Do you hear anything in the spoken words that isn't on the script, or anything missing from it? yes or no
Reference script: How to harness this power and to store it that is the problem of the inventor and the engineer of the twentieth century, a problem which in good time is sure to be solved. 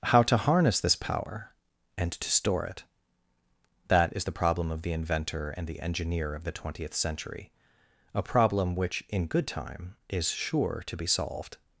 no